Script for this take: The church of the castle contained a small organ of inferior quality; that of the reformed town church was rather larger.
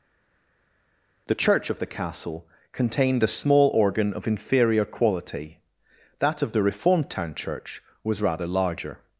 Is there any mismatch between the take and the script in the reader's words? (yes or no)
no